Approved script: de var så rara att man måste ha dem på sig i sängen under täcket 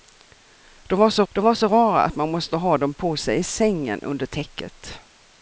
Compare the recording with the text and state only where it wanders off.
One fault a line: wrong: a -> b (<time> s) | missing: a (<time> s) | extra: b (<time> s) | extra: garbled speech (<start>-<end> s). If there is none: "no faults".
extra: de var så (1.3 s)